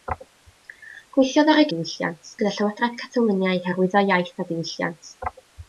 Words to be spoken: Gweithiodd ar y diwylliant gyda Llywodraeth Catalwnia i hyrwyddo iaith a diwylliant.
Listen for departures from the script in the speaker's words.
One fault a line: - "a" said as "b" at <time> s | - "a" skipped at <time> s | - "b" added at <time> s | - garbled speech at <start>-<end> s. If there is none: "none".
none